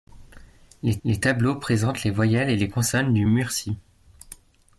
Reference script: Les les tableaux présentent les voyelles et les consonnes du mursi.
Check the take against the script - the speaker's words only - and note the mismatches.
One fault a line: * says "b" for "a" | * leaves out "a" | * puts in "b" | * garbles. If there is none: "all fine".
all fine